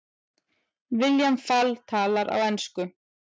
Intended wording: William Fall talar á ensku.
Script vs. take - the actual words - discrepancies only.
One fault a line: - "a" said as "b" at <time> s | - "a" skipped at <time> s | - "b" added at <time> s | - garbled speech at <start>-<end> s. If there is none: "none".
none